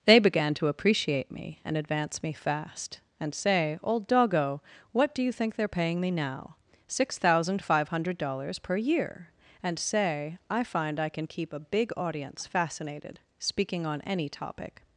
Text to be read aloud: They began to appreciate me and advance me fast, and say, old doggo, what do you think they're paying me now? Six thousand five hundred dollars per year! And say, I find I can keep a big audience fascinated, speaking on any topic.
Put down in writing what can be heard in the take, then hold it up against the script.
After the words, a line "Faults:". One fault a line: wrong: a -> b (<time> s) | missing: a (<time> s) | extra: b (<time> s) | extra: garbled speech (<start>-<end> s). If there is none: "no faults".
They began to appreciate me and advance me fast, and say, old doggo, what do you think they're paying me now? Six thousand five hundred dollars per year! And say, I find I can keep a big audience fascinated, speaking on any topic.
Faults:
no faults